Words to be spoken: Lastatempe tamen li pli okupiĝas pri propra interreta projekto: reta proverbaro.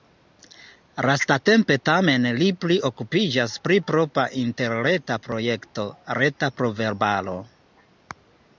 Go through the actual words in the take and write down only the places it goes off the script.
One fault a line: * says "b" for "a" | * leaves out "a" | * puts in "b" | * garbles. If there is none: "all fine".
all fine